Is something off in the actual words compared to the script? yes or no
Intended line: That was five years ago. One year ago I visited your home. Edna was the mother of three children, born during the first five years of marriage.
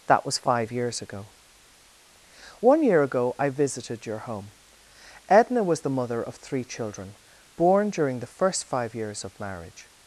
no